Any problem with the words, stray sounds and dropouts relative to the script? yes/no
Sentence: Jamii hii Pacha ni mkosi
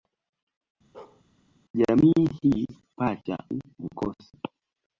yes